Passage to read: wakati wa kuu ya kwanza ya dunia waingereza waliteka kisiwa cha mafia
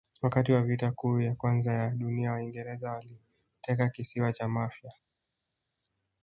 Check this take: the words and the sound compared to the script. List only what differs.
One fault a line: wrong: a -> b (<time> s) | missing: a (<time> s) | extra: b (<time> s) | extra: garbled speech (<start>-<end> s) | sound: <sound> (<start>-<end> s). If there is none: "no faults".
extra: vita (0.6 s)